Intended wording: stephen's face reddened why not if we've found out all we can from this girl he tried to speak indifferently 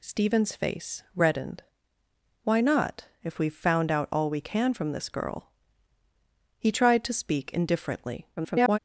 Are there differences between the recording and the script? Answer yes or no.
yes